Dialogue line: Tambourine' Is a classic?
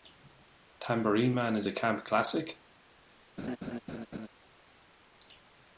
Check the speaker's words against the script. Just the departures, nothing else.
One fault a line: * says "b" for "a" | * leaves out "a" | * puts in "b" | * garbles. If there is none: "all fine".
* puts in "Man"
* puts in "camp"